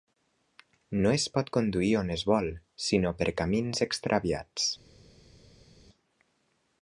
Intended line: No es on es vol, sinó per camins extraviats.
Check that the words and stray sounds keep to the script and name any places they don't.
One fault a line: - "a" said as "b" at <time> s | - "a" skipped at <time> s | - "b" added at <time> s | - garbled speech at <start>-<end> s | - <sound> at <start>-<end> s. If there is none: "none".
- "pot conduir" added at 1.4 s